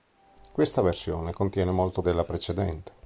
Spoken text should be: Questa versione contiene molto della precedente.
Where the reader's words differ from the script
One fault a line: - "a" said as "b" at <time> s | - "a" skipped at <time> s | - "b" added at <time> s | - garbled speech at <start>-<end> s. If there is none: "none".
none